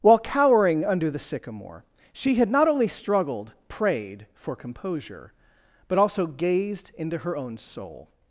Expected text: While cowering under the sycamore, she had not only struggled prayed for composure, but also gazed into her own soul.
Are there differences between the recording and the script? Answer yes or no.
no